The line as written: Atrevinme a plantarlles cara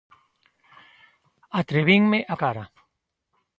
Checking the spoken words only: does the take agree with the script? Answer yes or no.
no